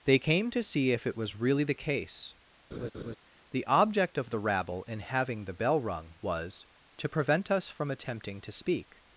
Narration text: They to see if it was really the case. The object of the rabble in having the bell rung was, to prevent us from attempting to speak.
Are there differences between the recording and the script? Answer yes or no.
yes